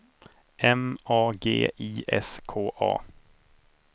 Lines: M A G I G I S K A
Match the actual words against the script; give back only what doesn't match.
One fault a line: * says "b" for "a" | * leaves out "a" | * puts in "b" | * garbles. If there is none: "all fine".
* leaves out "G I"